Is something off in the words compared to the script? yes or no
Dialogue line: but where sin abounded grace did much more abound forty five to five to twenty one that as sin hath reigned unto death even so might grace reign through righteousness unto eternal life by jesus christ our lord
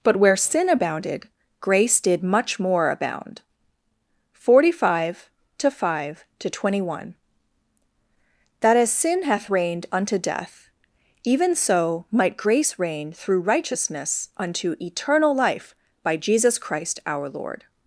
no